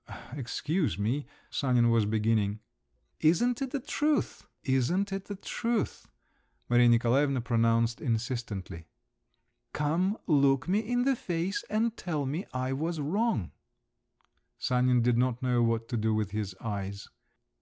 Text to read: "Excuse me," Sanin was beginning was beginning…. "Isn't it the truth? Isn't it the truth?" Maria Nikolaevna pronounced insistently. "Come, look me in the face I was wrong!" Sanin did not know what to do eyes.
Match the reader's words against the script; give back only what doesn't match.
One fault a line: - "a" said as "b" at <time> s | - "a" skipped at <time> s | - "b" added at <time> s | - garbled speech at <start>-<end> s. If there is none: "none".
- "was beginning" skipped at 2.6 s
- "and tell me" added at 11.7 s
- "with his" added at 16.1 s